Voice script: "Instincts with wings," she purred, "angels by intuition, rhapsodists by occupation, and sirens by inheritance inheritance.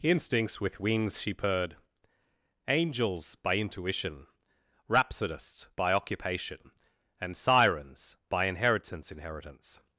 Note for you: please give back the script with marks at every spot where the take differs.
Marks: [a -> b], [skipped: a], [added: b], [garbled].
"Instincts with wings," she purred, "angels by intuition, rhapsodists by occupation, and sirens by inheritance inheritance.